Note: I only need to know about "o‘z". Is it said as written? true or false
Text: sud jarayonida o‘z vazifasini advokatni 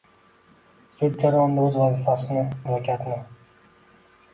true